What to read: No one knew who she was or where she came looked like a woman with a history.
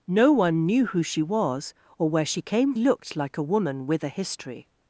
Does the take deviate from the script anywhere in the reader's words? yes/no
no